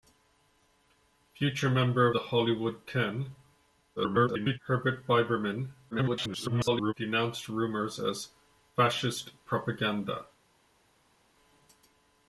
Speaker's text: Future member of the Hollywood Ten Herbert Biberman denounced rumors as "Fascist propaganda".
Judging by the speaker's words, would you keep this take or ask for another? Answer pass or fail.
fail